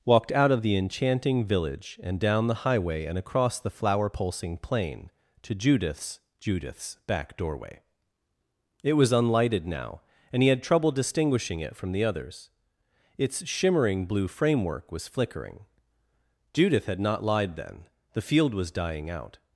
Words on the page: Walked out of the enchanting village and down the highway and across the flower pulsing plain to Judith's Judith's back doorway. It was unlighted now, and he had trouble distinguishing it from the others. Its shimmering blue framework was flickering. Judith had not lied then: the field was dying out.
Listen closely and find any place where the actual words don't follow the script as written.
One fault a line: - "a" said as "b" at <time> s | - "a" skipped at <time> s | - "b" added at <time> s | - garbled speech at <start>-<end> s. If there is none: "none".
none